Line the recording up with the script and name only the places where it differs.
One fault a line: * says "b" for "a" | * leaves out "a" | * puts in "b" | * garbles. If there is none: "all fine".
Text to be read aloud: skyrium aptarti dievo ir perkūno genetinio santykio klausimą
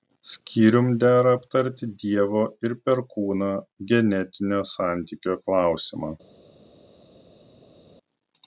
* puts in "dera"